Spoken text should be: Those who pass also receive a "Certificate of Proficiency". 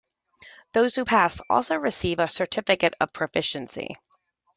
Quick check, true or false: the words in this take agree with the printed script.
true